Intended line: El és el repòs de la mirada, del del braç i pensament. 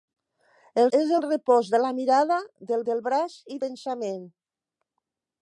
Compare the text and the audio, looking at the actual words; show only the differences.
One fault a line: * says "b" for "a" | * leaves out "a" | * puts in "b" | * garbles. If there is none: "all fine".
all fine